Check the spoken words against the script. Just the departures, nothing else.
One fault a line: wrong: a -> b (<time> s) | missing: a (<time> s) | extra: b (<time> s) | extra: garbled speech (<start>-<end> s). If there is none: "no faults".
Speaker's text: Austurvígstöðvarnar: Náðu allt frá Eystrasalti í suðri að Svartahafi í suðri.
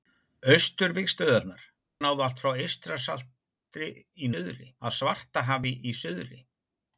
no faults